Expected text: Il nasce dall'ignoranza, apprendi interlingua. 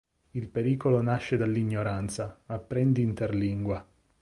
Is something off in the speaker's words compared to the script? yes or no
yes